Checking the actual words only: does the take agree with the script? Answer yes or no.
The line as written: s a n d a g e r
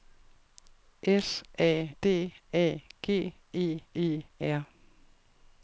no